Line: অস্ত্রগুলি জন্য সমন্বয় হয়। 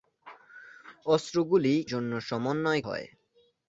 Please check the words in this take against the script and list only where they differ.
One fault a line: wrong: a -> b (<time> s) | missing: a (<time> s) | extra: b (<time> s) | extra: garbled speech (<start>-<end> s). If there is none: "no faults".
no faults